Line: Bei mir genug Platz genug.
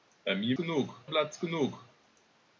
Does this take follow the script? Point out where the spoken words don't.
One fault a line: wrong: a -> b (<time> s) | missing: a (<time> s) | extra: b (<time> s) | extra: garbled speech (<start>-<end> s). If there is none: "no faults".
no faults